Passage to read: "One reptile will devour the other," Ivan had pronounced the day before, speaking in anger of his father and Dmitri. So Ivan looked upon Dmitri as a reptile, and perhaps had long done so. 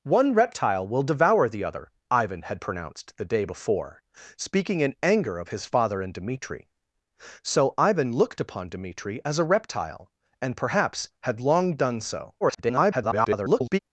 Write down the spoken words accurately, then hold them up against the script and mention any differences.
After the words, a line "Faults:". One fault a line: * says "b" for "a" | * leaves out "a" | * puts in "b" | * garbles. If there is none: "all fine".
"One reptile will devour the other," Ivan had pronounced the day before, speaking in anger of his father and Dmitri. So Ivan looked upon Dmitri as a reptile, and perhaps had long done so. [garbled]
Faults:
* garbles